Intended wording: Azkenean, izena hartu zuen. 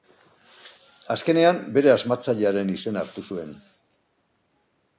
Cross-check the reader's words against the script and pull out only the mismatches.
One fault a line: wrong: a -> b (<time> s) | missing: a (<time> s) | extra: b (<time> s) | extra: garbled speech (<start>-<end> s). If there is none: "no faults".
extra: bere asmatzailearen (1.8 s)